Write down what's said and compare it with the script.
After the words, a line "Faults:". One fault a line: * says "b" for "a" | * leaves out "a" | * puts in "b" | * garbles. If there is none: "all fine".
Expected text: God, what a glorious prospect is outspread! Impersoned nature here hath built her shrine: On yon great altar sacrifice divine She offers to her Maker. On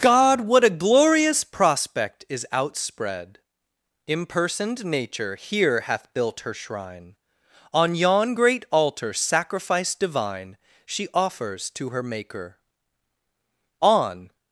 God, what a glorious prospect is outspread! Impersoned nature here hath built her shrine: On yon great altar sacrifice divine She offers to her Maker. On
Faults:
all fine